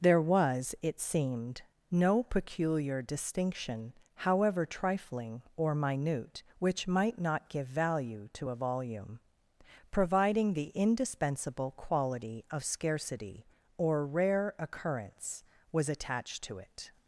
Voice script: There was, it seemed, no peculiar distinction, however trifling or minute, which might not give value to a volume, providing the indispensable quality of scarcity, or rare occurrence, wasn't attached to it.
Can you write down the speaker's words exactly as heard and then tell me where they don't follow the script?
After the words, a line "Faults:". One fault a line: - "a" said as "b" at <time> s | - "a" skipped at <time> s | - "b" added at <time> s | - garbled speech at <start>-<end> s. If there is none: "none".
There was, it seemed, no peculiar distinction, however trifling or minute, which might not give value to a volume, providing the indispensable quality of scarcity, or rare occurrence, was attached to it.
Faults:
- "wasn't" said as "was" at 15.7 s